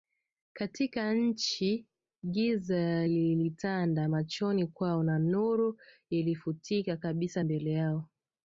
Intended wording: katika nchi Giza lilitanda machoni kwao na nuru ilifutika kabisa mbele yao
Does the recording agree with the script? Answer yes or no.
yes